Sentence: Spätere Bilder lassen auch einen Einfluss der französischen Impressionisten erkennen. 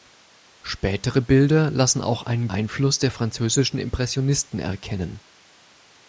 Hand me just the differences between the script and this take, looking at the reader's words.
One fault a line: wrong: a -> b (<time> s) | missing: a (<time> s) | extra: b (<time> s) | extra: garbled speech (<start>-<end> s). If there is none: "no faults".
no faults